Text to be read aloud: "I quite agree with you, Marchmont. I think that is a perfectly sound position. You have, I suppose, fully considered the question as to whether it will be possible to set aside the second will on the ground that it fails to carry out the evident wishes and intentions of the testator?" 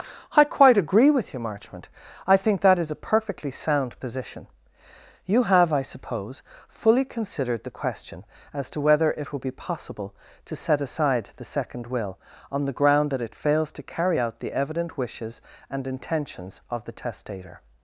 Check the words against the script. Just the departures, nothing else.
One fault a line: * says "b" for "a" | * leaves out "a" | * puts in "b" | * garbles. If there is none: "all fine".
all fine